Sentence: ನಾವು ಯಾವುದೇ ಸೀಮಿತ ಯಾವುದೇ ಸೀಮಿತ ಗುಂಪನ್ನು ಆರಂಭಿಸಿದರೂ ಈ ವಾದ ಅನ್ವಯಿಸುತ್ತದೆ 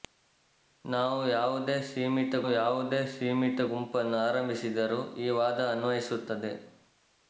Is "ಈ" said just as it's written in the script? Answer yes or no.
yes